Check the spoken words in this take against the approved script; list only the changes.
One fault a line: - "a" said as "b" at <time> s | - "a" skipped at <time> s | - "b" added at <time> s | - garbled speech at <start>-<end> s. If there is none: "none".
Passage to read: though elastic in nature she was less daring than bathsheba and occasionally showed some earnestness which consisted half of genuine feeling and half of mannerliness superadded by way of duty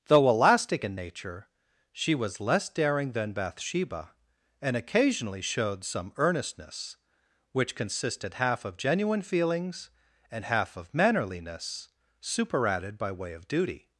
- "feeling" said as "feelings" at 9.2 s